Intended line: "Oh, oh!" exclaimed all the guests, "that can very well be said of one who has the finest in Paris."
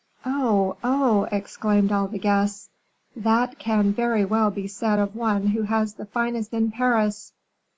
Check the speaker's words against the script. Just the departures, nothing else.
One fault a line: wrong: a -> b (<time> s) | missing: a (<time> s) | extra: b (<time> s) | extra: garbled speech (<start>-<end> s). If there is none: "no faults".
no faults